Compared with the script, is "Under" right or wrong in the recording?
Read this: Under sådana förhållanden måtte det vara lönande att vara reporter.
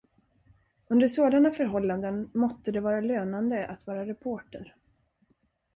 right